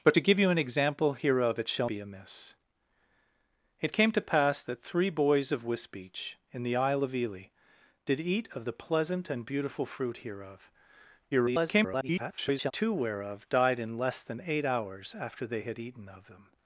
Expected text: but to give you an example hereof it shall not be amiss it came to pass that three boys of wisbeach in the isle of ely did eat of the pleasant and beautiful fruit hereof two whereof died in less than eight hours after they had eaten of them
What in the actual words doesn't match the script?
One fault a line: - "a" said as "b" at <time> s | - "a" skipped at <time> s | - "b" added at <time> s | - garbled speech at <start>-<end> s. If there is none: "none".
- "not" skipped at 1.9 s
- garbled speech at 11.3-12.7 s